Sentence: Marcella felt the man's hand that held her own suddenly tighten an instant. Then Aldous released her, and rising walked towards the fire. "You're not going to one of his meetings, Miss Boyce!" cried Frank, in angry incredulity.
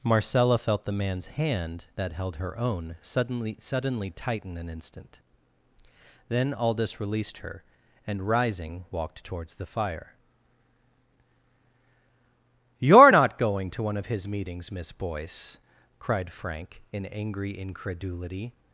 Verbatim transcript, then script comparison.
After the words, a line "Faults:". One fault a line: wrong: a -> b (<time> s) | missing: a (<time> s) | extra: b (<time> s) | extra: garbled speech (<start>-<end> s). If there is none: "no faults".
Marcella felt the man's hand that held her own suddenly suddenly tighten an instant. Then Aldous released her, and rising walked towards the fire. "You're not going to one of his meetings, Miss Boyce!" cried Frank, in angry incredulity.
Faults:
extra: suddenly (3.6 s)